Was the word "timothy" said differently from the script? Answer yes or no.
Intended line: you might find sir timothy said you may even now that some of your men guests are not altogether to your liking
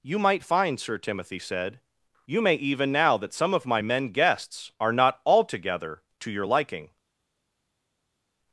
no